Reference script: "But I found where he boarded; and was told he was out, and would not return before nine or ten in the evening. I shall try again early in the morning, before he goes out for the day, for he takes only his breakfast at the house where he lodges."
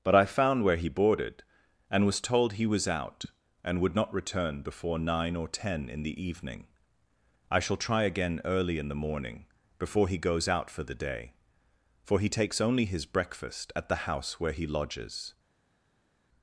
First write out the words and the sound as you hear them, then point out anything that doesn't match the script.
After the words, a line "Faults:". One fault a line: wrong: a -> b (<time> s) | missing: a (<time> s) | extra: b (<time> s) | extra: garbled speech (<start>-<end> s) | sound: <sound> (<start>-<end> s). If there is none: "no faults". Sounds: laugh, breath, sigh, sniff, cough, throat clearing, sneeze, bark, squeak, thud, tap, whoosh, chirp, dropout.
"But I found where he boarded; and was told he was out, and would not return before nine or ten in the evening. I shall try again early in the morning, before he goes out for the day, for he takes only his breakfast at the house where he lodges."
Faults:
no faults